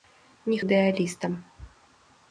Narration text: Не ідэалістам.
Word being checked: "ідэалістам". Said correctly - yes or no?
yes